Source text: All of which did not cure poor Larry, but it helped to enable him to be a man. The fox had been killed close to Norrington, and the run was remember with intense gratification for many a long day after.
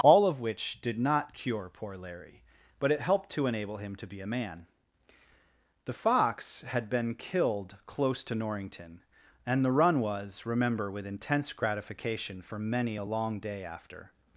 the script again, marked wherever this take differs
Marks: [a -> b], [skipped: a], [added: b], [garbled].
All of which did not cure poor Larry, but it helped to enable him to be a man. The fox had been killed close to Norrington, and the run was remember with intense gratification for many a long day after.